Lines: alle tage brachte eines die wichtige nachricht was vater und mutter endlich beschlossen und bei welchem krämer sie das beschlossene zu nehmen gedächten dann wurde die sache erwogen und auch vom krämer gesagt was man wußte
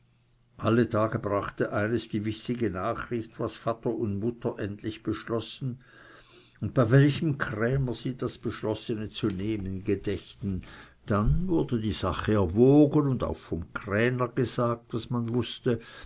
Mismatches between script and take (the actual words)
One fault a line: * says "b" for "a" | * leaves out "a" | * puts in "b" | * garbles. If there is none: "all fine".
all fine